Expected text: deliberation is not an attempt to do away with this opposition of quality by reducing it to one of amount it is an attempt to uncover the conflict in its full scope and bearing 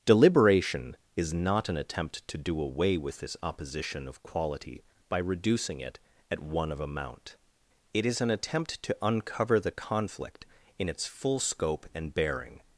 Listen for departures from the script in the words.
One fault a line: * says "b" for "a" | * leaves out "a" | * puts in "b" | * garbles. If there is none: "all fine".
* says "at" for "to"